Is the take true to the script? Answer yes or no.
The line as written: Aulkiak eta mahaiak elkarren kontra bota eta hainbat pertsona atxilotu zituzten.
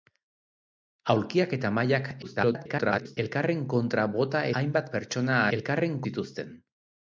no